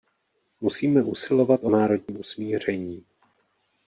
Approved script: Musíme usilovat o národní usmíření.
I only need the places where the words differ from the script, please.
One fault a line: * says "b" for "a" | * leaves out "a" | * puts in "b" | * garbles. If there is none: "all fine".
all fine